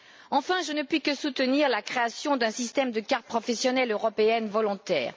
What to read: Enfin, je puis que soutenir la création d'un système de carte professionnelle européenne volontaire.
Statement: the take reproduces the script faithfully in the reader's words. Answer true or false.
false